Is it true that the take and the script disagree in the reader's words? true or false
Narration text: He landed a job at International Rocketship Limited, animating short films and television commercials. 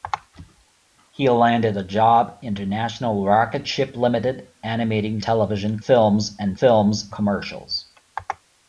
true